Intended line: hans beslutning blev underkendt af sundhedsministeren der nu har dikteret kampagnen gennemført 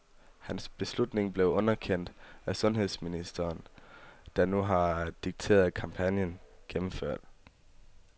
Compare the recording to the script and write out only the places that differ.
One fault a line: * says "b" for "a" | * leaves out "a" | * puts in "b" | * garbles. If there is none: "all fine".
all fine